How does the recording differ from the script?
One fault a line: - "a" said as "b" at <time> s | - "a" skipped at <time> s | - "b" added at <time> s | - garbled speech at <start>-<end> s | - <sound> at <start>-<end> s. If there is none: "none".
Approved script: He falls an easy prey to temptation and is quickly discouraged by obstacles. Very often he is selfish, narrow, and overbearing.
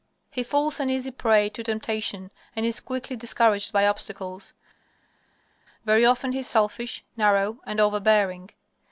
none